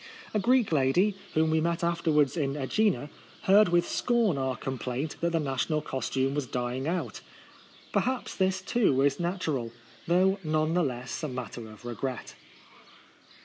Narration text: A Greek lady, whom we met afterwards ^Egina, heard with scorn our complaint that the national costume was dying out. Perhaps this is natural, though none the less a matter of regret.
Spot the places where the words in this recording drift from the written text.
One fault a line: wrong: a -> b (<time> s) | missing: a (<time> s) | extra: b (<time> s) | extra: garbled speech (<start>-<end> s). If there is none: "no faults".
extra: in (2.4 s)
extra: too (8.6 s)